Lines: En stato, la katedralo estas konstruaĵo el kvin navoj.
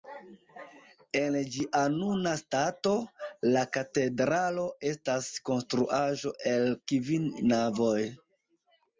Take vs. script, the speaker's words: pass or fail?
fail